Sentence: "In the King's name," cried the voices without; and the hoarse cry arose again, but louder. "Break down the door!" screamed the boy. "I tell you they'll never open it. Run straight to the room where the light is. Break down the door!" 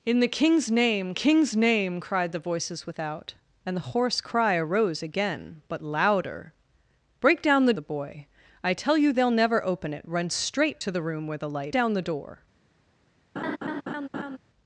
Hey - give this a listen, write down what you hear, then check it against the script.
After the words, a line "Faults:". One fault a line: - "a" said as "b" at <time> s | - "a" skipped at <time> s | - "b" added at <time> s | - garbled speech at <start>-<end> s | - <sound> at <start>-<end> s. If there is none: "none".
"In the King's name King's name," cried the voices without; and the hoarse cry arose again, but louder. "Break down the the boy. "I tell you they'll never open it. Run straight to the room where the light down the door!"
Faults:
- "King's name" added at 1.1 s
- "door screamed" skipped at 7.7 s
- "is Break" skipped at 11.8 s
- laugh at 13.4-14.4 s